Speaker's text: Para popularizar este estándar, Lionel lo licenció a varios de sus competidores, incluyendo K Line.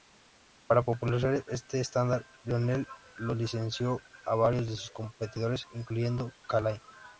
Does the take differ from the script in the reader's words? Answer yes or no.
no